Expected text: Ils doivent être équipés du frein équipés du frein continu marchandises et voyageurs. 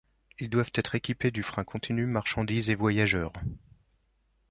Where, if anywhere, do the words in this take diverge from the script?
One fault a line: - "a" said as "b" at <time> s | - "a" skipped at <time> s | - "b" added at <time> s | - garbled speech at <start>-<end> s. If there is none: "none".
- "équipés du frein" skipped at 1.6 s